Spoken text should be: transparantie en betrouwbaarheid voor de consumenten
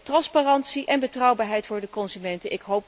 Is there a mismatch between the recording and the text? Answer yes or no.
no